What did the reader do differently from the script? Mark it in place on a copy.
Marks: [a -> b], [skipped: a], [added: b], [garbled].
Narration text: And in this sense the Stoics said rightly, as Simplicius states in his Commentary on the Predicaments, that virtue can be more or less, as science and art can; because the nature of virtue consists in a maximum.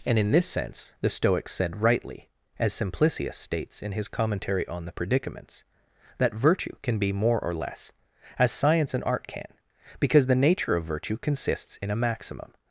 And in this sense the Stoics said rightly, as Simplicius states in his Commentary on the Predicaments, that virtue can be more or less, as science and art can; because the nature of virtue consists in a maximum.